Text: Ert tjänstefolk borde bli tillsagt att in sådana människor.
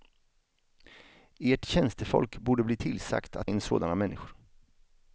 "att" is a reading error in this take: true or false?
false